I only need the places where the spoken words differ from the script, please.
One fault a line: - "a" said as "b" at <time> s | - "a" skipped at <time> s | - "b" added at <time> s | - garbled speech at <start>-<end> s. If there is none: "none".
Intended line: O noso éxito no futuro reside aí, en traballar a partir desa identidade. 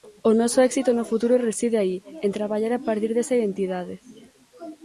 none